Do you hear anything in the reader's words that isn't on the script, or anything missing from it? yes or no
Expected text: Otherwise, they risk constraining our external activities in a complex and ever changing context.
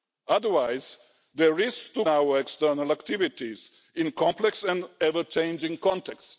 yes